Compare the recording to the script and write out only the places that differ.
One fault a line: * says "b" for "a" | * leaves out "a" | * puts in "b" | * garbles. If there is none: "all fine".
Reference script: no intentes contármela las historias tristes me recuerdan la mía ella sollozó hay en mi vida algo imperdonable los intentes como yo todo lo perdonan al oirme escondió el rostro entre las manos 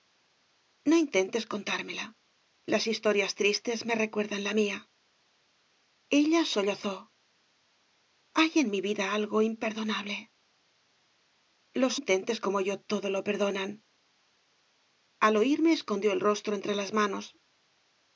all fine